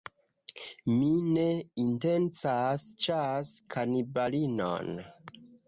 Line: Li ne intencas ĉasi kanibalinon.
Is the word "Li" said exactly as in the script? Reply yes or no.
no